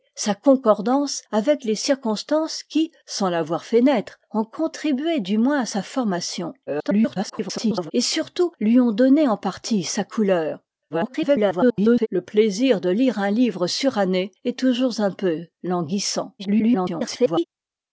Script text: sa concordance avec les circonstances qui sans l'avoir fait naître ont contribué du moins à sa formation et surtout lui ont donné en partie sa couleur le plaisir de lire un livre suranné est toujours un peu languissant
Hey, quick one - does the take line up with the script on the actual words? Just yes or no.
no